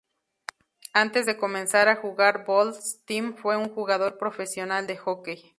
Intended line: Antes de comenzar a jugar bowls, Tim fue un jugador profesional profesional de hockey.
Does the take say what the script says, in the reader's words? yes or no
no